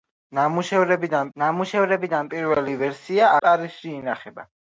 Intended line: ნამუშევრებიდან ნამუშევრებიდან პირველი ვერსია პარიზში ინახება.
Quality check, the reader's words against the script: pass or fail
pass